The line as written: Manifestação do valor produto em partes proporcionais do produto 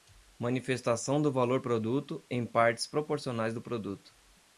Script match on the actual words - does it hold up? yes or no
yes